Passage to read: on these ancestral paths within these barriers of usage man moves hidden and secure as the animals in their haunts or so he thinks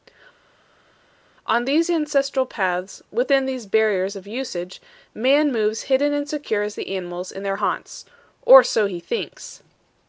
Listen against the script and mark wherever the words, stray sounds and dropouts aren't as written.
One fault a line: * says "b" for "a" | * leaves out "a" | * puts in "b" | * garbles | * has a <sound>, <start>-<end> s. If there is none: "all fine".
all fine